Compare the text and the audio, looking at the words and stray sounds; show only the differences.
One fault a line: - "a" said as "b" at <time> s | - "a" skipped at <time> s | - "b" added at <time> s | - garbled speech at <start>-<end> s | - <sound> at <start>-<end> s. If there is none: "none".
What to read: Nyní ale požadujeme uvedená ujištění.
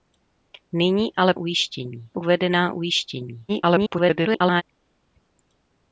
- "požadujeme" said as "ujištění" at 1.4 s
- garbled speech at 3.5-4.6 s